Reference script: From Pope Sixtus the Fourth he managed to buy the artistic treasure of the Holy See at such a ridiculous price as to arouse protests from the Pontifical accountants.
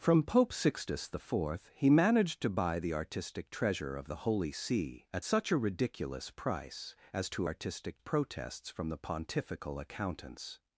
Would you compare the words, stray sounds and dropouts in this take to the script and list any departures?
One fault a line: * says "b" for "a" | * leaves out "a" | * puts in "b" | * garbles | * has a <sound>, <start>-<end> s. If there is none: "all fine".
* says "artistic" for "arouse"